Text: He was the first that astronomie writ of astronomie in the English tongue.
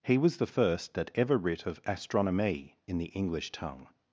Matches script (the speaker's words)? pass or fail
fail